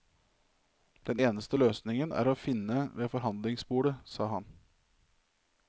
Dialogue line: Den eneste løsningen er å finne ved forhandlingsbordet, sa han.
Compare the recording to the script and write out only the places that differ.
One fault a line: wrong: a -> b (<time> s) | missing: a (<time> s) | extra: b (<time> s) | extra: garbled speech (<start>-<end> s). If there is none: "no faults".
no faults